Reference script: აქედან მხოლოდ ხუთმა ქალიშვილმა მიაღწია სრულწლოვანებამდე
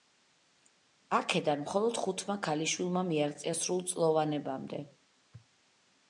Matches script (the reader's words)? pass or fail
pass